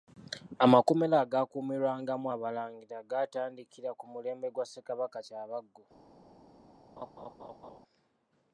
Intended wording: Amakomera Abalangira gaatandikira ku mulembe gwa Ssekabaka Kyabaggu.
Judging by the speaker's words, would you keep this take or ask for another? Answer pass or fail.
fail